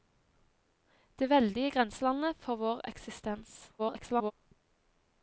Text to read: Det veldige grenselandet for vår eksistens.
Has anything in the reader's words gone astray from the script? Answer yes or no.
yes